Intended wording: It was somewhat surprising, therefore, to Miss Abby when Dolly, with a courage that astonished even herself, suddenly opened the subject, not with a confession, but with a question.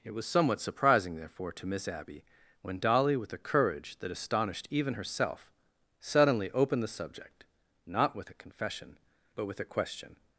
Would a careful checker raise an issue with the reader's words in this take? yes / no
no